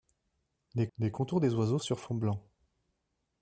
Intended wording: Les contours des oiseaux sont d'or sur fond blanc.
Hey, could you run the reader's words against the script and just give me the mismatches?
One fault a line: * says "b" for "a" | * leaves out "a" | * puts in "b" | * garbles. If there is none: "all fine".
* puts in "les"
* leaves out "sont d'or"